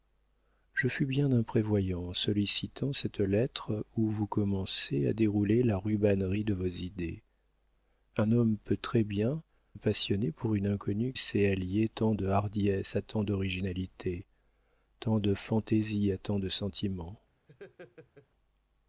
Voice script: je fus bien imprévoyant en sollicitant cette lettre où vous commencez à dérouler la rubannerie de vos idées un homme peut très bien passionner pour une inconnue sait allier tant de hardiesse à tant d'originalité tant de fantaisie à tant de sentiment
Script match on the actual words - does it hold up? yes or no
yes